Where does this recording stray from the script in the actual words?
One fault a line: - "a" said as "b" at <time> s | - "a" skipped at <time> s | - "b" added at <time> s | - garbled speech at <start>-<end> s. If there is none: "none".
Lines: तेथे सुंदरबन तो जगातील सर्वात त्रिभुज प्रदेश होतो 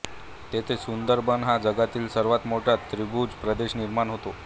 - "तो" said as "हा" at 1.4 s
- "मोठा" added at 2.5 s
- "निर्माण" added at 3.8 s